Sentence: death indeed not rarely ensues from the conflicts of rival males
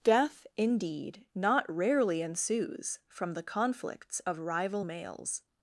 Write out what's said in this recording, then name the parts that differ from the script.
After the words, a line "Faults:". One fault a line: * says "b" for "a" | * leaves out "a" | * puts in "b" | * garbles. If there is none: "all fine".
death indeed not rarely ensues from the conflicts of rival males
Faults:
all fine